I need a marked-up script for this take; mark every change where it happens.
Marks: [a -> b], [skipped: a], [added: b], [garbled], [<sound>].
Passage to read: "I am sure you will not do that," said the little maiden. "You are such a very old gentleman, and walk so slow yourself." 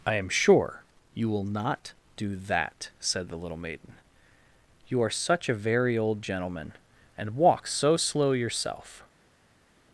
"I am sure you will not do that," said the little maiden. "You are such a very old gentleman, and walk so slow yourself."